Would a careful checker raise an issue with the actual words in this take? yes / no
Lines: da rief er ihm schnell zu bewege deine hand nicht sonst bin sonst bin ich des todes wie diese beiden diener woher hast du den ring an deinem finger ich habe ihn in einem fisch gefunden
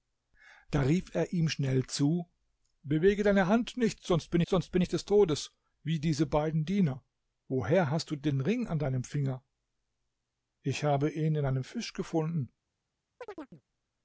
no